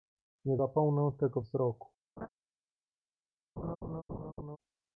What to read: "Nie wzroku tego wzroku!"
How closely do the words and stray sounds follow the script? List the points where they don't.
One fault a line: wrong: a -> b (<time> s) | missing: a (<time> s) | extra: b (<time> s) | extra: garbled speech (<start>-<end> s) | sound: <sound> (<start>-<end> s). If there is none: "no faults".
wrong: wzroku -> zapomnę (0.5 s)
sound: laugh (2.2-2.3 s)
sound: laugh (3.6-4.6 s)